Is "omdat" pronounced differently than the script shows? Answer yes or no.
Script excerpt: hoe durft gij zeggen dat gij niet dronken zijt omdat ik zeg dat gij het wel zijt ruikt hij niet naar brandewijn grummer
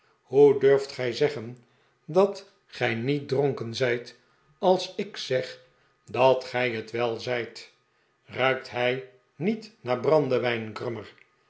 yes